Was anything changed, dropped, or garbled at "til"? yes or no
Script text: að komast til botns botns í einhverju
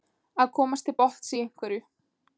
no